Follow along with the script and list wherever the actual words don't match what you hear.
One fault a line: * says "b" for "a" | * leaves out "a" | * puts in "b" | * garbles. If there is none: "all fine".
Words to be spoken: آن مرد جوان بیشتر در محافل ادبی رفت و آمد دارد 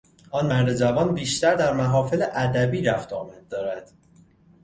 all fine